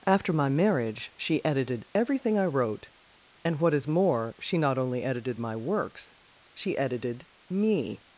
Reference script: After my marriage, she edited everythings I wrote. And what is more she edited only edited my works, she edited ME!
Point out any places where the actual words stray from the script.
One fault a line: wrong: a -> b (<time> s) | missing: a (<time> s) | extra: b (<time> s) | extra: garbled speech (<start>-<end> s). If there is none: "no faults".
wrong: everythings -> everything (1.9 s)
wrong: edited -> not (4.6 s)